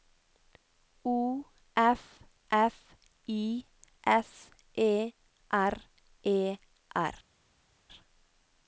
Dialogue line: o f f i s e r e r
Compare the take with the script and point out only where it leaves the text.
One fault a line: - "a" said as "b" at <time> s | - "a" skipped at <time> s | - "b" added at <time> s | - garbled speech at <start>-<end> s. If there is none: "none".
none